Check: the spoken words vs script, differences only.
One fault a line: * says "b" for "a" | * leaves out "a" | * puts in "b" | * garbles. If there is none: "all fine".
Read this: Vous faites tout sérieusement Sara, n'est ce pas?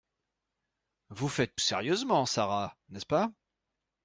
* leaves out "tout"